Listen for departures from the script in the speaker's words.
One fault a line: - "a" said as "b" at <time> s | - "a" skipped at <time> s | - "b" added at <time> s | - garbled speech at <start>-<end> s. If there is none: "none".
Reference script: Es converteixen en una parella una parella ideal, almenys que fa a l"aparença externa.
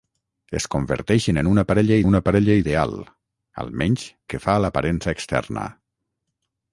none